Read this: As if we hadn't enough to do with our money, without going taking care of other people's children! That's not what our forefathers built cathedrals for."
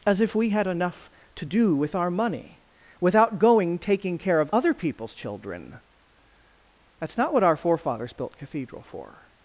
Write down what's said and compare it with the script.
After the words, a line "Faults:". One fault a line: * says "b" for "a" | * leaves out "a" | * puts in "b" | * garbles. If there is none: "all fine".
As if we had enough to do with our money, without going taking care of other people's children! That's not what our forefathers built cathedral for."
Faults:
* says "had" for "hadn't"
* says "cathedral" for "cathedrals"